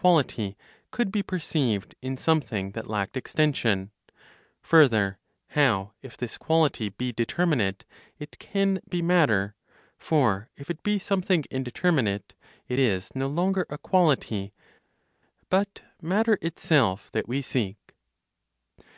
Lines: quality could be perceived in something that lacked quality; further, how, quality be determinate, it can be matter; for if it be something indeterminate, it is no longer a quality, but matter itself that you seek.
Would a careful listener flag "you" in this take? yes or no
yes